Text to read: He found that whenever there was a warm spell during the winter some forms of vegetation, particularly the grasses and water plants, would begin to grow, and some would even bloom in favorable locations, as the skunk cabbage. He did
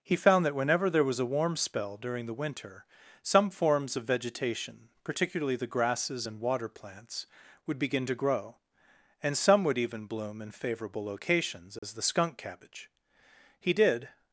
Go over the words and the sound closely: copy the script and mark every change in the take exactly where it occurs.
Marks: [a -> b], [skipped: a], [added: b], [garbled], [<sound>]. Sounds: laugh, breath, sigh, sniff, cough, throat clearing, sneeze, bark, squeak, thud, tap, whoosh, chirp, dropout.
He found that whenever there was a warm spell during the winter some forms of vegetation, particularly the grasses and water plants, would begin to grow, and some would even bloom in favorable locations, as [dropout] the skunk cabbage. He did